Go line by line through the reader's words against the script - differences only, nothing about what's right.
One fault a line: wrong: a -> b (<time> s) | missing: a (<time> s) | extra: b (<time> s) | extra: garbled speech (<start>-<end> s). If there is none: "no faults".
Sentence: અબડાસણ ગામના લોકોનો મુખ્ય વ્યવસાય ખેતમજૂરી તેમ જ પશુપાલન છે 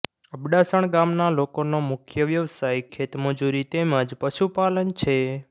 no faults